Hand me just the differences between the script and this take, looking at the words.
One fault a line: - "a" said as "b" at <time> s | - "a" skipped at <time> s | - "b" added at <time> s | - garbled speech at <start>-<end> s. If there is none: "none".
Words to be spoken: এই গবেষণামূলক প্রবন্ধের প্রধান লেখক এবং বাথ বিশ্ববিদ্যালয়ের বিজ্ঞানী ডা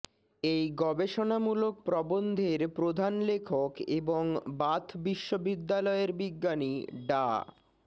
none